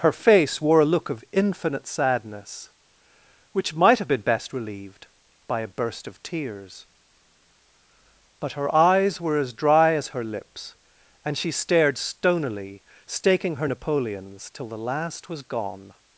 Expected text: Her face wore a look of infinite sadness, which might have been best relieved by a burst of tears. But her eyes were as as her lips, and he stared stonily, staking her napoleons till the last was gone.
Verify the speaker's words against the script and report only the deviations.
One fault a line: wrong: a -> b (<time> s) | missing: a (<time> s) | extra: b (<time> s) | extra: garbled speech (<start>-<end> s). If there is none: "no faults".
extra: dry (9.5 s)
wrong: he -> she (11.4 s)